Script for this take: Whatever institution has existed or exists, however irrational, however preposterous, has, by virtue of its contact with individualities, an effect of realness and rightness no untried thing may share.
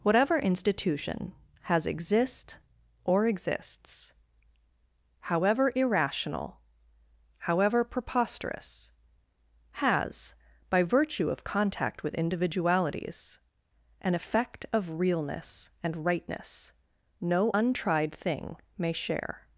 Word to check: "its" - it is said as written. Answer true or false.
false